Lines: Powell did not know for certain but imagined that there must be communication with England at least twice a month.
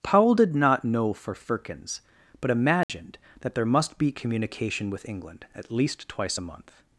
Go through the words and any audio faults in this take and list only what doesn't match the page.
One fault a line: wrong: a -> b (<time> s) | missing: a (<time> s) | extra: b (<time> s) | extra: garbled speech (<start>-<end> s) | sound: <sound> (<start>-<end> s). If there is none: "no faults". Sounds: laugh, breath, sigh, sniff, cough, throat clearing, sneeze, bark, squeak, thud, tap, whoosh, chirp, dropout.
wrong: certain -> firkins (1.4 s)
sound: dropout (2.8-2.9 s)